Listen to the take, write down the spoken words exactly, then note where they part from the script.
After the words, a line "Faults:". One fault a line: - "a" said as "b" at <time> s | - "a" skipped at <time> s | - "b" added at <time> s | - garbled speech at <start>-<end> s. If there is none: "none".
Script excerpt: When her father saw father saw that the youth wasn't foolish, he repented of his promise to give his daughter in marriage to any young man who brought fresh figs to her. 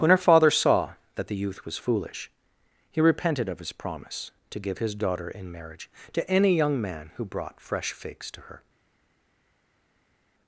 When her father saw that the youth was foolish, he repented of his promise to give his daughter in marriage to any young man who brought fresh figs to her.
Faults:
- "father saw" skipped at 0.9 s
- "wasn't" said as "was" at 1.6 s